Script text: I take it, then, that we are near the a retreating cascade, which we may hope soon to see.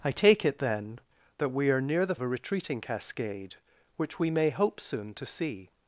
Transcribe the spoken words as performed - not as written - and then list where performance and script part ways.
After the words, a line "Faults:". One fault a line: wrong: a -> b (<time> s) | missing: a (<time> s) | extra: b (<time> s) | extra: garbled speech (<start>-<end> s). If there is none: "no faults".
I take it, then, that we are near the a retreating cascade, which we may hope soon to see.
Faults:
no faults